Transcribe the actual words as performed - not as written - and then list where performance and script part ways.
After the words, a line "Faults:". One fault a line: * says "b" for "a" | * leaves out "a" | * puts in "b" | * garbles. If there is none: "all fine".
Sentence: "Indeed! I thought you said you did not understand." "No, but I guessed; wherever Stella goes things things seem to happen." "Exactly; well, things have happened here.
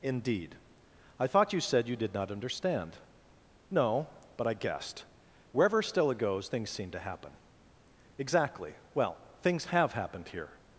"Indeed! I thought you said you did not understand." "No, but I guessed; wherever Stella goes things seem to happen." "Exactly; well, things have happened here.
Faults:
* leaves out "things"